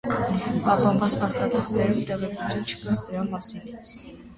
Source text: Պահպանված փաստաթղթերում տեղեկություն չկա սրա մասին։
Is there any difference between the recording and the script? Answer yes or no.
no